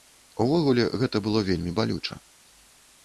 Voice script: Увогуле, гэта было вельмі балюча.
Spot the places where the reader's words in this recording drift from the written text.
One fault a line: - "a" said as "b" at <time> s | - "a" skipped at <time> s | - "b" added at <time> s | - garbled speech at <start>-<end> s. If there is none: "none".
none